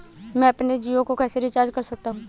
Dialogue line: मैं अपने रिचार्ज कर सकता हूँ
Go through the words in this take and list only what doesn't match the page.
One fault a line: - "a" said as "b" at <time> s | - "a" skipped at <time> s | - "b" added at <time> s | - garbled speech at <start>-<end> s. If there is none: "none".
- "जियो को कैसे" added at 0.8 s